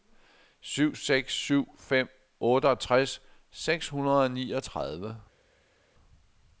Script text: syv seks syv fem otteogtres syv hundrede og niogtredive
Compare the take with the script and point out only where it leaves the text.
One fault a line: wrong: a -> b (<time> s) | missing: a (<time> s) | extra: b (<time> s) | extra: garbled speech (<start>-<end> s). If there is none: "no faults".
wrong: syv -> seks (3.5 s)